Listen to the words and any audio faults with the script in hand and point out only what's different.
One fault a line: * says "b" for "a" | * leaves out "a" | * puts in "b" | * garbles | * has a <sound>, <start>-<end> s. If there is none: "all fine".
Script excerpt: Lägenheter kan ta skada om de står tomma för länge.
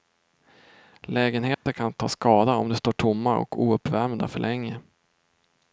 * has a dropout, 1.5-1.7 s
* puts in "och ouppvärmda"